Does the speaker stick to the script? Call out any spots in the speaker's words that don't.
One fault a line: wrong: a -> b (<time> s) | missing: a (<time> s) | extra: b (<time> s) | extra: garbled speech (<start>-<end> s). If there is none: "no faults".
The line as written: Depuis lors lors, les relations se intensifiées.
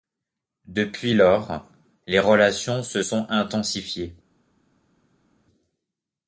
missing: lors (1.7 s)
extra: sont (3.0 s)